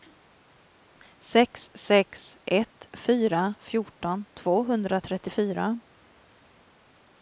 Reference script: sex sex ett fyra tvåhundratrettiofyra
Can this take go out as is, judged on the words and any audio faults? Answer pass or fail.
fail